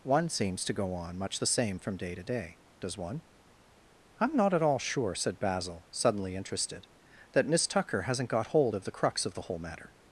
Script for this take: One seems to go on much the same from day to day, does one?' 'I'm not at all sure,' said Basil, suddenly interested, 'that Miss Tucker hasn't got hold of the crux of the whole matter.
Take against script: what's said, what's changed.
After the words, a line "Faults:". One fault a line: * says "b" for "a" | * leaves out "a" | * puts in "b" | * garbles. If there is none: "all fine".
One seems to go on much the same from day to day, does one?' 'I'm not at all sure,' said Basil, suddenly interested, 'that Miss Tucker hasn't got hold of the crux of the whole matter.
Faults:
all fine